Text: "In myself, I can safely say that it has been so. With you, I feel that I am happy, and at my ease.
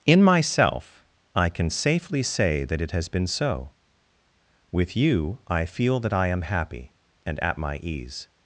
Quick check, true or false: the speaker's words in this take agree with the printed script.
true